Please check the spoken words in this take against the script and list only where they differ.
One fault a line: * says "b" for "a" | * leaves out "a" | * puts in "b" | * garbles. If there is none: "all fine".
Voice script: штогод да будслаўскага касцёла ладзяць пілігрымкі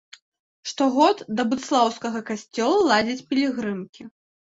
all fine